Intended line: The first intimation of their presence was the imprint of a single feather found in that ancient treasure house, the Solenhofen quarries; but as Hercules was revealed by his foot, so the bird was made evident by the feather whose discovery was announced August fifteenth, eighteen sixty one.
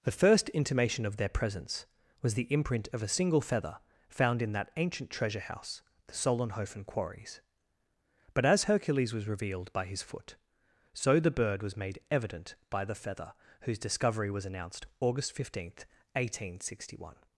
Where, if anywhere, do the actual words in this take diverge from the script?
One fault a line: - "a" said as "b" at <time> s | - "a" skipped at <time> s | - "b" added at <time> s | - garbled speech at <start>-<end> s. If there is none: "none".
none